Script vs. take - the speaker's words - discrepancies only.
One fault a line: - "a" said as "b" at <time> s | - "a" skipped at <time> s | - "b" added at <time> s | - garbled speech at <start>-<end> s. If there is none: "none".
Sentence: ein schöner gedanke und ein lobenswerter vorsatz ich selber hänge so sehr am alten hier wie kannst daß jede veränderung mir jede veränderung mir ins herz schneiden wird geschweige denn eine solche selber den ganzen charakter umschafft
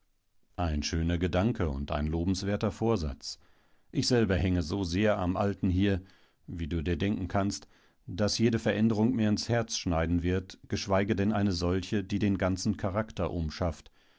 - "kannst daß jede veränderung mir" said as "du dir denken kannst daß" at 6.7 s
- "selber" said as "die" at 12.0 s